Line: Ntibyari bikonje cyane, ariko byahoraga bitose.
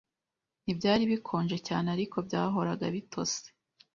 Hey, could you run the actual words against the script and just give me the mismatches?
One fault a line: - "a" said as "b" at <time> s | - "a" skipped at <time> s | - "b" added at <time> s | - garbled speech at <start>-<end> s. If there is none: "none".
none